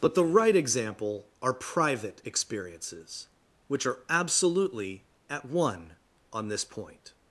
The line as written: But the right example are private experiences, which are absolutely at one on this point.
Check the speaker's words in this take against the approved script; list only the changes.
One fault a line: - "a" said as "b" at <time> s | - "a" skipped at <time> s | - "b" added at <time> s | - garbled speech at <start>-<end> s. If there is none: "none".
none